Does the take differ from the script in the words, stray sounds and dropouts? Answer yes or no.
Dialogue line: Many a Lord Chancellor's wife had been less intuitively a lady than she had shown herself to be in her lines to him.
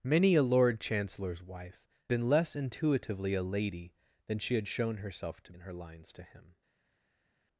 yes